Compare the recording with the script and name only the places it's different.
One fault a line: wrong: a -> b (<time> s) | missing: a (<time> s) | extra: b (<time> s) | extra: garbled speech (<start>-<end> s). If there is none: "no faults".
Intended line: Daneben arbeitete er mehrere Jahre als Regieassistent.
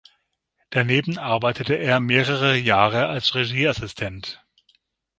no faults